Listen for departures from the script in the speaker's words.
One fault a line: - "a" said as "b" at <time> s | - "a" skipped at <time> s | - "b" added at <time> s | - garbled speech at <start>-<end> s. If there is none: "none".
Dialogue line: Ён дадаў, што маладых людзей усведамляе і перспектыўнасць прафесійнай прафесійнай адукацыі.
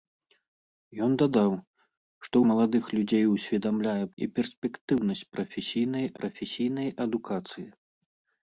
none